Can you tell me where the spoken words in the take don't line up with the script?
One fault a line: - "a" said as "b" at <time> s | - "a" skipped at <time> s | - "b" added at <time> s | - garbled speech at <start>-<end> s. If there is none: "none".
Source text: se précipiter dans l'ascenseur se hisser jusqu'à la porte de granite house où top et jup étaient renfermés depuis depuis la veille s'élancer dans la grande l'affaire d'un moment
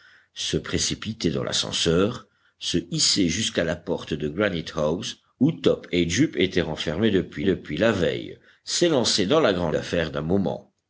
none